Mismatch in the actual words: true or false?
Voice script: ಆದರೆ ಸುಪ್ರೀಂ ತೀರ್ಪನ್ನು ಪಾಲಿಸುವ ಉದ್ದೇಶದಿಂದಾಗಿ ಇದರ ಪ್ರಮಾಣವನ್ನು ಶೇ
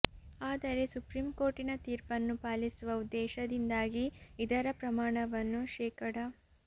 true